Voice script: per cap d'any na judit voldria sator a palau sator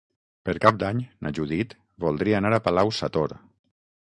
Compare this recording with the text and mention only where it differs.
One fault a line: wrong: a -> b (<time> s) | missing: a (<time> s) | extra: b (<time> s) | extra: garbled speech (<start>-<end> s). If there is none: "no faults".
wrong: sator -> anar (2.4 s)